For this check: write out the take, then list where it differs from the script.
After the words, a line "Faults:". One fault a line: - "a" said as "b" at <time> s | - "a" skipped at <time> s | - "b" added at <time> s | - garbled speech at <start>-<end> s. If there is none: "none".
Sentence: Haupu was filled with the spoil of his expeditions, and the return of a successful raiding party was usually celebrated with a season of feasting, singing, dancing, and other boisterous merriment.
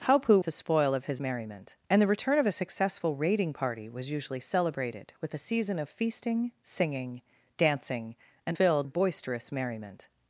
Haupu the spoil of his merriment, and the return of a successful raiding party was usually celebrated with a season of feasting, singing, dancing, and filled boisterous merriment.
Faults:
- "was filled with" skipped at 0.4 s
- "expeditions" said as "merriment" at 1.2 s
- "other" said as "filled" at 8.5 s